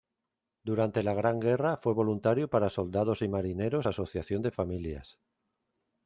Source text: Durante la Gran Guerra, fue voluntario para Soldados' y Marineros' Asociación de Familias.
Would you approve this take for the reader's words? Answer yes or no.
yes